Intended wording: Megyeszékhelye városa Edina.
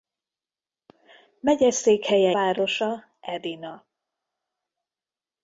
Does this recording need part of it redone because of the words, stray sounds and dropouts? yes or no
no